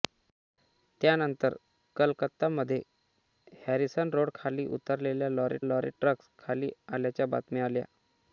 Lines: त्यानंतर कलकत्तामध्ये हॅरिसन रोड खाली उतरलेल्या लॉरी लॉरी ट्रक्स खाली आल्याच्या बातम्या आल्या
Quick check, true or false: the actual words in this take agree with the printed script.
true